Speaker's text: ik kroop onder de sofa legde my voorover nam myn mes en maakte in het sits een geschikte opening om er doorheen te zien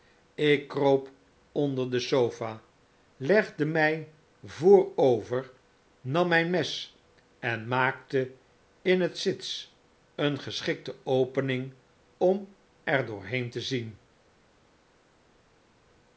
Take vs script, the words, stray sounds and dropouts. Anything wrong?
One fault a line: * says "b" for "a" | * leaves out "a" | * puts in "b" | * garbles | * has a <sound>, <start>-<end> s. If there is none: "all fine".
all fine